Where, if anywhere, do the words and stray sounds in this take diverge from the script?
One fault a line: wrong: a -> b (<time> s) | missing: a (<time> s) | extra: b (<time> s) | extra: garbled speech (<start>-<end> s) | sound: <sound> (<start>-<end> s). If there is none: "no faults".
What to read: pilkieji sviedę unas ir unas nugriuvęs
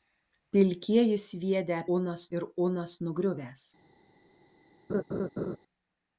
sound: laugh (4.9-5.6 s)